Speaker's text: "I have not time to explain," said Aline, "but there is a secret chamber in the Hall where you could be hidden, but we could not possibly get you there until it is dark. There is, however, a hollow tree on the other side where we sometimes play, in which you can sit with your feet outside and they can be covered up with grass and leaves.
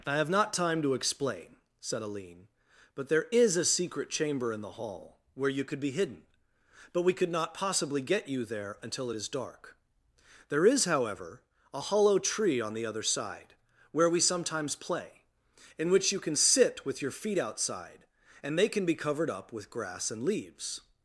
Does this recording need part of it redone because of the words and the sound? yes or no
no